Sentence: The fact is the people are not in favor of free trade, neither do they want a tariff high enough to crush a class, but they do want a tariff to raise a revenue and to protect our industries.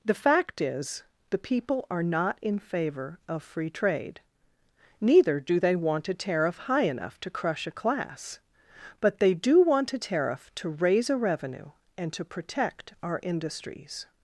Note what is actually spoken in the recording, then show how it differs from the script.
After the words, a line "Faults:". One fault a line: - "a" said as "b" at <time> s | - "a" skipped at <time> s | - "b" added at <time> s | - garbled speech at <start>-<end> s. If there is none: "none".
The fact is the people are not in favor of free trade, neither do they want a tariff high enough to crush a class, but they do want a tariff to raise a revenue and to protect our industries.
Faults:
none